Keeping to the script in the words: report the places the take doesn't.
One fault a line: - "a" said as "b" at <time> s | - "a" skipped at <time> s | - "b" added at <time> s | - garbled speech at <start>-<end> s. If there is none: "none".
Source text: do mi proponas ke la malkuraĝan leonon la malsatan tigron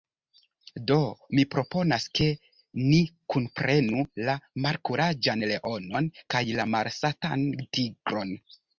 - "ni kunprenu" added at 2.9 s
- "kaj" added at 6.4 s